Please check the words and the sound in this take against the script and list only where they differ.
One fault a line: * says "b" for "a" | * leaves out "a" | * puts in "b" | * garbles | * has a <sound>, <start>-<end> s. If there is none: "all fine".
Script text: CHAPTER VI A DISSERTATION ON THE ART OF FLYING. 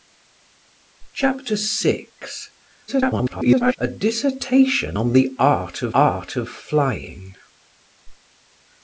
* garbles
* puts in "ART OF"